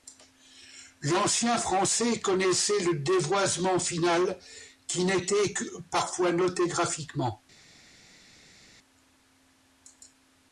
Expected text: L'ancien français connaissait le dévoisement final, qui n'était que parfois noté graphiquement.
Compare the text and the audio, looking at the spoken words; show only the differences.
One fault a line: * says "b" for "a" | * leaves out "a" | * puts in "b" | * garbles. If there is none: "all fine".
all fine